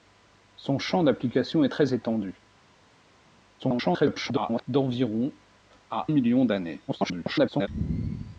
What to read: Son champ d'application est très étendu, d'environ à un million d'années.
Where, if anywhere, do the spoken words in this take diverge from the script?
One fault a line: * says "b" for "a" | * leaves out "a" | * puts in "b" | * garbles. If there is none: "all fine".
* garbles
* leaves out "un"
* garbles